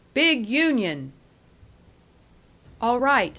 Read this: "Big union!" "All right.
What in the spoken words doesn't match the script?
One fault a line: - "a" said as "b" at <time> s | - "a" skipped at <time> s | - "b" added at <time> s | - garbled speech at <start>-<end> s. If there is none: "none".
none